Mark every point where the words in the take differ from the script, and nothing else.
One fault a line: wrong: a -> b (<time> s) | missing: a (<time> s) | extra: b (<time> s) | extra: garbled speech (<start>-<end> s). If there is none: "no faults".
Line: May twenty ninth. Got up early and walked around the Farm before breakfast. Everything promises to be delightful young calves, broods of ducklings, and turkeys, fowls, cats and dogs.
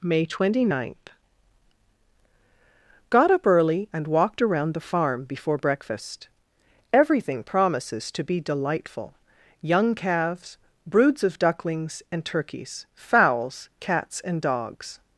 no faults